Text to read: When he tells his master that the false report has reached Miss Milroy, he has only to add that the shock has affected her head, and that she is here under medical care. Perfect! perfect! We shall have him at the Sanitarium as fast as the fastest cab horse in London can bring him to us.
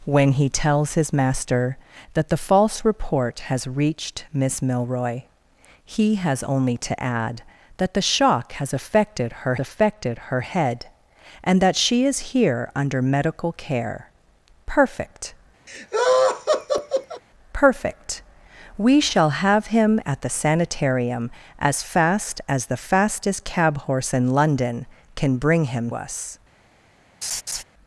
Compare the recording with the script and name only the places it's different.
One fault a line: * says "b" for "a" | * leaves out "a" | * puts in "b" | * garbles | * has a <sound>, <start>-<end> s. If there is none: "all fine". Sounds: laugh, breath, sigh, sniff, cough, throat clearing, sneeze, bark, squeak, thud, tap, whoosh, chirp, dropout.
* puts in "affected her"
* has a laugh, 15.7-17.2 s
* leaves out "to"
* has a laugh, 27.2-27.6 s